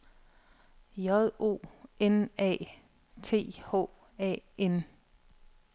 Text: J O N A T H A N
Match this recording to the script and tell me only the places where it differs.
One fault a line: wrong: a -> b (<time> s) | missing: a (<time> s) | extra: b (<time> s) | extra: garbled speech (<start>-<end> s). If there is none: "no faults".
no faults